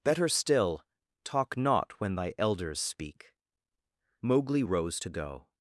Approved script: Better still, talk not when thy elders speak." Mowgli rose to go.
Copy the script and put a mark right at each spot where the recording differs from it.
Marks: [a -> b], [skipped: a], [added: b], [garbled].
Better still, talk not when thy elders speak." Mowgli rose to go.